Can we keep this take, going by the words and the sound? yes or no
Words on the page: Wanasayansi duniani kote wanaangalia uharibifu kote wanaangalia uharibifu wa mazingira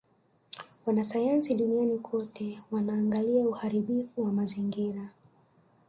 no